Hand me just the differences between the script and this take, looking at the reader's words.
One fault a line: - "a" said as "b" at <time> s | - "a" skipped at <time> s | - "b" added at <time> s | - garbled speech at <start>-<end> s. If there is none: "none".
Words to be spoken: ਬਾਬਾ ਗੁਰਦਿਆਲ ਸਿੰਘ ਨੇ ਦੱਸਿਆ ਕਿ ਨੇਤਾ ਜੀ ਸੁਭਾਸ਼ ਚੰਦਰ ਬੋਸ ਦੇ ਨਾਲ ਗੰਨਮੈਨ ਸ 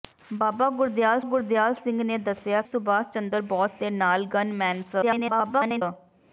- "ਗੁਰਦਿਆਲ" added at 1.2 s
- "ਕਿ ਨੇਤਾ ਜੀ" skipped at 2.6 s
- garbled speech at 5.0-5.8 s